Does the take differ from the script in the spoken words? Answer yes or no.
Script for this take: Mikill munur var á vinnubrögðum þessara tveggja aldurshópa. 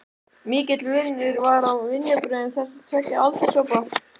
no